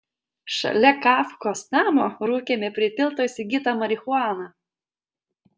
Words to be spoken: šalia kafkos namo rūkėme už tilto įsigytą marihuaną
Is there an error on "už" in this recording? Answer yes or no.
yes